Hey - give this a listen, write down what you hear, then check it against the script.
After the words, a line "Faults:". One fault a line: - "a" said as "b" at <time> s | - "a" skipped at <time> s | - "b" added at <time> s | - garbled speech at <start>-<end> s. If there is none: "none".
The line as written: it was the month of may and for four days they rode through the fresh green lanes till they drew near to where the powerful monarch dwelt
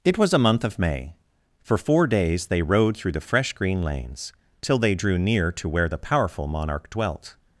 it was a month of may for four days they rode through the fresh green lanes till they drew near to where the powerful monarch dwelt
Faults:
- "the" said as "a" at 0.3 s
- "and" skipped at 1.1 s